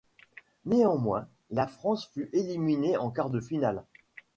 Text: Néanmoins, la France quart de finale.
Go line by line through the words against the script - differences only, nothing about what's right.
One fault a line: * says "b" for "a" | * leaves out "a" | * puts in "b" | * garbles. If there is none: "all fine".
* puts in "fut éliminée en"